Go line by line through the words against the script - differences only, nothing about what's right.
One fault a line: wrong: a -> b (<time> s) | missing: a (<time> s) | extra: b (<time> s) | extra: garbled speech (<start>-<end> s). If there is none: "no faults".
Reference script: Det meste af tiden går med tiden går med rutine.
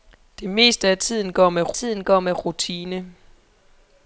no faults